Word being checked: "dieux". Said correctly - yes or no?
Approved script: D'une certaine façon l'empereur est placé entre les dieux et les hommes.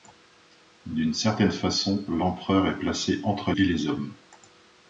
no